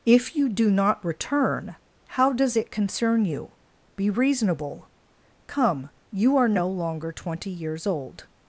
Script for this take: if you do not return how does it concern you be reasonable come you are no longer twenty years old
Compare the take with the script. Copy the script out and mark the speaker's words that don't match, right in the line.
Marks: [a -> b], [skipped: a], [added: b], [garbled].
if you do not return how does it concern you be reasonable come you are no longer twenty years old